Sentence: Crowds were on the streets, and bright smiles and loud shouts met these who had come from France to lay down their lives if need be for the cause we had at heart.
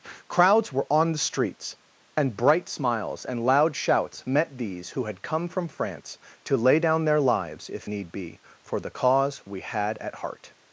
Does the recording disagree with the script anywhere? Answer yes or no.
no